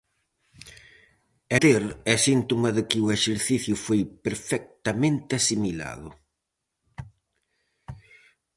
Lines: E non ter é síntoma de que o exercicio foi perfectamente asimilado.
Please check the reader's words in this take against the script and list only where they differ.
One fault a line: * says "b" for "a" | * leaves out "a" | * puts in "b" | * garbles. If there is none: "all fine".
* leaves out "non"